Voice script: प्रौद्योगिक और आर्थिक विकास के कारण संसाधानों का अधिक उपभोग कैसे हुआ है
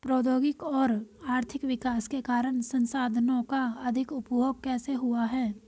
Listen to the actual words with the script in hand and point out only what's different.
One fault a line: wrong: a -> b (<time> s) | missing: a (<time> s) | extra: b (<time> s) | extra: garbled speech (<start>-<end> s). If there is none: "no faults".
no faults